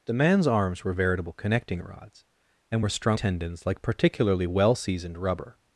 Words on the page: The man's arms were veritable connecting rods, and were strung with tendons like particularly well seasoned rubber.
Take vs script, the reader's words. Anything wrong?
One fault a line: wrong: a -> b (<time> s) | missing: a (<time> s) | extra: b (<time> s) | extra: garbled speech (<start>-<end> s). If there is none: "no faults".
missing: with (3.2 s)